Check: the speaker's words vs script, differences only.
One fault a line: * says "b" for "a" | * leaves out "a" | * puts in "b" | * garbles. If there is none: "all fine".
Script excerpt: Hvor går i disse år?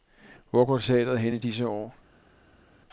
* puts in "teatret hen"